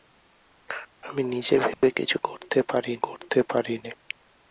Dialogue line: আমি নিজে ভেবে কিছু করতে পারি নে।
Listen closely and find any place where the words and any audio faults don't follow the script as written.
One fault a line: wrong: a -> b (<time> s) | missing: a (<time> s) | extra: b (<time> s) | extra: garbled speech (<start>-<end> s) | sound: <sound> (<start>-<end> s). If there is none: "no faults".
sound: dropout (1.7-1.8 s)
extra: করতে পারি (3.0 s)